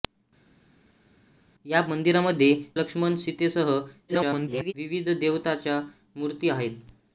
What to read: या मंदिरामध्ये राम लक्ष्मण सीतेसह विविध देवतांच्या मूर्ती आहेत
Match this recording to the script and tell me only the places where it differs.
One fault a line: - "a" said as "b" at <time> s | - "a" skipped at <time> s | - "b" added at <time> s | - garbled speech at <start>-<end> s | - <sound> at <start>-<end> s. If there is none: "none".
- "राम" skipped at 2.5 s
- garbled speech at 4.1-4.7 s